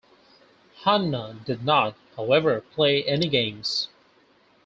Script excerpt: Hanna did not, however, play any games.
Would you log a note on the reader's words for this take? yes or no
no